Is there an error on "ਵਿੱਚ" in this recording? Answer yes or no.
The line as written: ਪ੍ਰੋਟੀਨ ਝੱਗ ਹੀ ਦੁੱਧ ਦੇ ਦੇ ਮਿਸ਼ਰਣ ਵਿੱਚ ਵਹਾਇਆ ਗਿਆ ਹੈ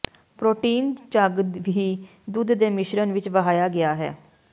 no